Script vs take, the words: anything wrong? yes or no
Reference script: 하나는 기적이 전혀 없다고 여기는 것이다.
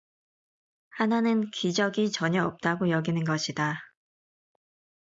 no